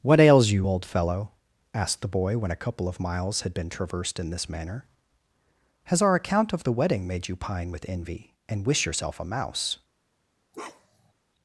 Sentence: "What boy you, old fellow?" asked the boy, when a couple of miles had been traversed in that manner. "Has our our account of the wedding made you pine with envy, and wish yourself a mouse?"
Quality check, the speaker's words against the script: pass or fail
fail